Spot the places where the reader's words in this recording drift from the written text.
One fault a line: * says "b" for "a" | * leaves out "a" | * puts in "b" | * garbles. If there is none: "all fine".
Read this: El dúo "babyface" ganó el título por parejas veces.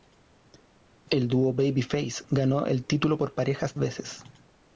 all fine